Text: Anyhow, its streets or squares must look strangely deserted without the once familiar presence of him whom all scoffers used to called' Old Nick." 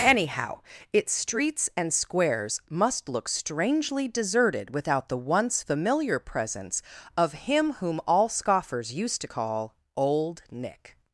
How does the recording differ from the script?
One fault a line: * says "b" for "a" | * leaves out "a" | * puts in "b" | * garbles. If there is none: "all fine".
* says "and" for "or"
* says "call" for "called"